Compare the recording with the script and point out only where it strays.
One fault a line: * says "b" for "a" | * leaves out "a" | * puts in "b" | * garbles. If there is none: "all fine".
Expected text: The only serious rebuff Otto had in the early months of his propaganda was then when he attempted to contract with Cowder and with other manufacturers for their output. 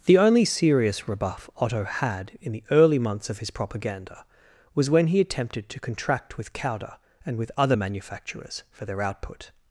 * leaves out "then"